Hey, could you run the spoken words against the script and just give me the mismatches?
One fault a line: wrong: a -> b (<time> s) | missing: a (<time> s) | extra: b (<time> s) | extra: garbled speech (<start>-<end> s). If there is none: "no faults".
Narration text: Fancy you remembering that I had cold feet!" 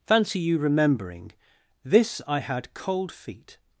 wrong: that -> this (1.9 s)